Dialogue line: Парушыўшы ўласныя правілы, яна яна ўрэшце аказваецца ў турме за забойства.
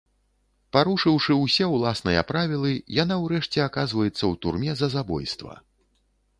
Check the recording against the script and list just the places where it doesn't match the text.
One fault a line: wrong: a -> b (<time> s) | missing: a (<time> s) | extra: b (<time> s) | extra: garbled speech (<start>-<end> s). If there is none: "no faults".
extra: ўсе (1.4 s)
missing: яна (3.1 s)